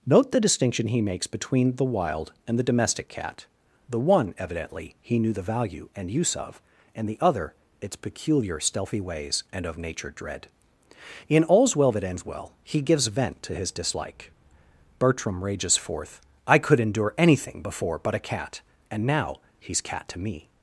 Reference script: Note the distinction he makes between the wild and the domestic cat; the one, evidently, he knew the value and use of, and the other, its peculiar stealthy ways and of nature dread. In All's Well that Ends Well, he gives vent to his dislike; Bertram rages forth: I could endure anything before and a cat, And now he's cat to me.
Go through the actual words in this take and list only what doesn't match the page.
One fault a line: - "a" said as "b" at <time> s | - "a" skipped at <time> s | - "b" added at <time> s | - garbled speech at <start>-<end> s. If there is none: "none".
- "and" said as "but" at 18.0 s